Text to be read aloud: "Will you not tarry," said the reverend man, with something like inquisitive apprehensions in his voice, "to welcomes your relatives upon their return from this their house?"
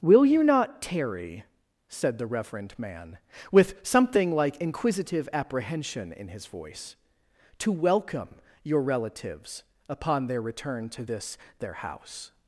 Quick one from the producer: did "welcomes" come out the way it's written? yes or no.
no